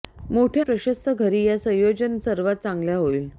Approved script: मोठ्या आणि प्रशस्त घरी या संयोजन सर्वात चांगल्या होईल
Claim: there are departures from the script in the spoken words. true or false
true